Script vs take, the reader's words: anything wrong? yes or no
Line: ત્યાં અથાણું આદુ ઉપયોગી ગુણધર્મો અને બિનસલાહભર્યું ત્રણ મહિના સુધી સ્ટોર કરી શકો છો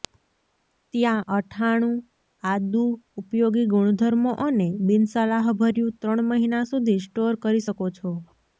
no